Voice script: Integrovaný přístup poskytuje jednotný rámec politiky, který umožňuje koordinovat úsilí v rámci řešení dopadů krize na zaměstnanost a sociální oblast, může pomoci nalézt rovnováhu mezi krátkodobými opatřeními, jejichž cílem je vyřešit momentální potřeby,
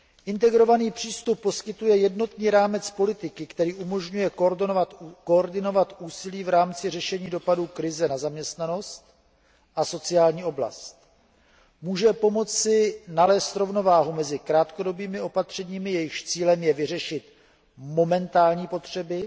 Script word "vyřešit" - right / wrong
right